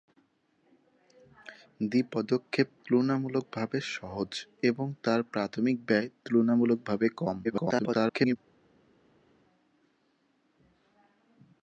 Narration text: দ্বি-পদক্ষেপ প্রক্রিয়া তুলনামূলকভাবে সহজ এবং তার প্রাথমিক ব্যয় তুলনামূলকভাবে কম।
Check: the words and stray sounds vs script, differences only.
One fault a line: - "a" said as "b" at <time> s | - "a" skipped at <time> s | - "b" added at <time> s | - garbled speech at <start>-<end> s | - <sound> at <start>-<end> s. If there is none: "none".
- "প্রক্রিয়া" skipped at 2.7 s
- garbled speech at 7.4-8.4 s